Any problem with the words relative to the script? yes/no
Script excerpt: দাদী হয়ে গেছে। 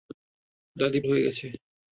no